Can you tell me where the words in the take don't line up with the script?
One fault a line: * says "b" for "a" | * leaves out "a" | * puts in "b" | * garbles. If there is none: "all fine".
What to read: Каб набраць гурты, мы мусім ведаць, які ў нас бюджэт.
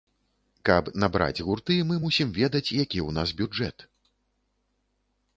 all fine